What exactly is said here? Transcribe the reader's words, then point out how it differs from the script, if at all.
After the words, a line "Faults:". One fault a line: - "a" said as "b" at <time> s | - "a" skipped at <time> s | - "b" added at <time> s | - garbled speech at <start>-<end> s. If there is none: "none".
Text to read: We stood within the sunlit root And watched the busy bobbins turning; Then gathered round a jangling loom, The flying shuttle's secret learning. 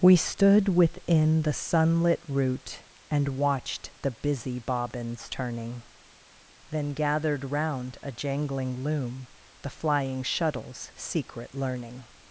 We stood within the sunlit root And watched the busy bobbins turning; Then gathered round a jangling loom, The flying shuttle's secret learning.
Faults:
none